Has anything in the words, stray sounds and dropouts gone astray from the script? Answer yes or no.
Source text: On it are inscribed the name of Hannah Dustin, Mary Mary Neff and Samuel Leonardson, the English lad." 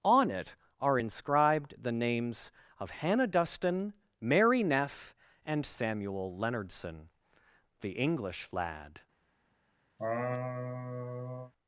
yes